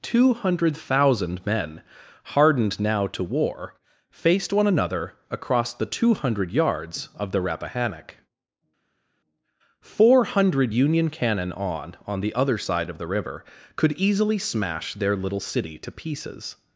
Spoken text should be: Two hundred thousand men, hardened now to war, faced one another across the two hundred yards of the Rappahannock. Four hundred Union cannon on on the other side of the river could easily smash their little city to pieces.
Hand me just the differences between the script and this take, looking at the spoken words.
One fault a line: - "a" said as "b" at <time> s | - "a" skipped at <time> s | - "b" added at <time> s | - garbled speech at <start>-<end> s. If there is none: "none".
none